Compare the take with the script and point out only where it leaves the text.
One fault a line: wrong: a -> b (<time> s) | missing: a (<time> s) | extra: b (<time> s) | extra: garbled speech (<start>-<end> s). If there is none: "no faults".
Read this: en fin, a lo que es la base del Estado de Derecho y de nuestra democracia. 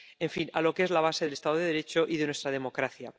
no faults